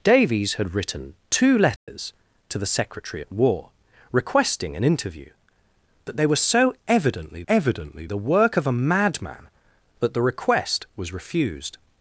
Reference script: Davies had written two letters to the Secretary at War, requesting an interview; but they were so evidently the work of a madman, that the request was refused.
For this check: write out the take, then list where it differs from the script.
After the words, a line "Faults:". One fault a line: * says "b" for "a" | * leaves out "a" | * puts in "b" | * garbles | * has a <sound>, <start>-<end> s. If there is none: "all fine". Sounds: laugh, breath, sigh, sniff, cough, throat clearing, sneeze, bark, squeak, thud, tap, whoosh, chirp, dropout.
Davies had written two letters to the Secretary at War, requesting an interview; but they were so evidently evidently the work of a madman, that the request was refused.
Faults:
* has a dropout, 1.8-1.9 s
* puts in "evidently"